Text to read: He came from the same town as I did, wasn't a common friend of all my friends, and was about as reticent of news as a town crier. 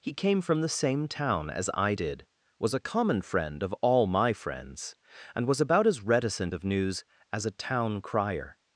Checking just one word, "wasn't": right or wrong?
wrong